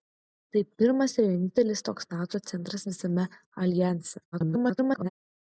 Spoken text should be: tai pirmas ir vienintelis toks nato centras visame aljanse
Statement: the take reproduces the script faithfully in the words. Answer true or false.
false